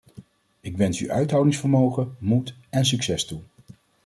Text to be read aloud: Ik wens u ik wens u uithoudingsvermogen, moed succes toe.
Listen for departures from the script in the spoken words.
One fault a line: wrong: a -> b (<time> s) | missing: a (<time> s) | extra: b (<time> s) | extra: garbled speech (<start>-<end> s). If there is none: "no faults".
missing: ik wens u (1.1 s)
extra: en (2.7 s)